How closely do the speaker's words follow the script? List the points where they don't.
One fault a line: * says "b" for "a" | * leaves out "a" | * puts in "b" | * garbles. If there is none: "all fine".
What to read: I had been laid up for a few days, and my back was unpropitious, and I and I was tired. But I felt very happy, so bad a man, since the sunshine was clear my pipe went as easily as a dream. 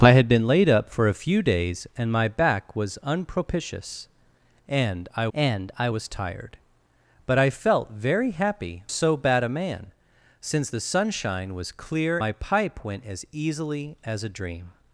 all fine